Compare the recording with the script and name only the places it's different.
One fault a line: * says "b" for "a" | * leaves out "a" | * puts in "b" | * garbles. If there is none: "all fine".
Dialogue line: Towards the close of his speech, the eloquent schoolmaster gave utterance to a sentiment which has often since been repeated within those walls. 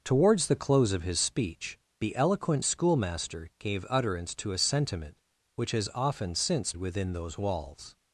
* leaves out "been repeated"